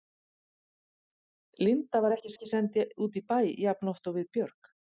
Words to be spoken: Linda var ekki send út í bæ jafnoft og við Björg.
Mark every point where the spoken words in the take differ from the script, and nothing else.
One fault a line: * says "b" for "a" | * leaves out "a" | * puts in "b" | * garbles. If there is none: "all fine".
* puts in "ekki"